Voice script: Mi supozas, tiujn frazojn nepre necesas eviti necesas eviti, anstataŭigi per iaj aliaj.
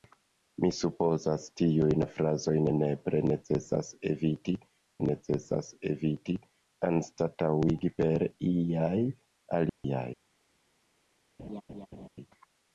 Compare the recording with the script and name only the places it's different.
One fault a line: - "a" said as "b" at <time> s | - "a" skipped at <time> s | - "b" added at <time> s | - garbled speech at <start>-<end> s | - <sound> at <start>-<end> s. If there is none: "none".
- dropout at 9.7-9.8 s
- laugh at 11.4-12.1 s